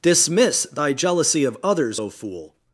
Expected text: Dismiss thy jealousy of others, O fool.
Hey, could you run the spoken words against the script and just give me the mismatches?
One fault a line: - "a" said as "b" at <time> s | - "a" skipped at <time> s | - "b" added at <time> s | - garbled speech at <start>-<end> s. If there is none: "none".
none